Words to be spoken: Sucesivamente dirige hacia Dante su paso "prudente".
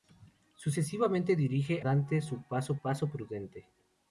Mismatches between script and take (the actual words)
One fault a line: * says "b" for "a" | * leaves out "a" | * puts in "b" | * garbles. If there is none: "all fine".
* leaves out "hacia"
* puts in "paso"